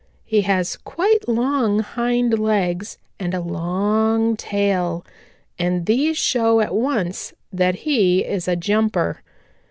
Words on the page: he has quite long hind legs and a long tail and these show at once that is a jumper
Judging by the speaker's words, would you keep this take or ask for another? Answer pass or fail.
fail